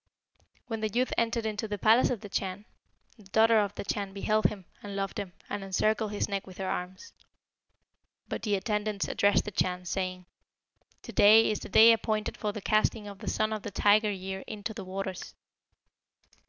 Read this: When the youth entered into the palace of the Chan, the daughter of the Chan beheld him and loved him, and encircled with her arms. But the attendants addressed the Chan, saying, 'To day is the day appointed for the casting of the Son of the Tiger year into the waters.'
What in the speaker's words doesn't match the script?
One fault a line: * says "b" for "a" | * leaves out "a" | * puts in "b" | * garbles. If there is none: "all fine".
* puts in "his neck"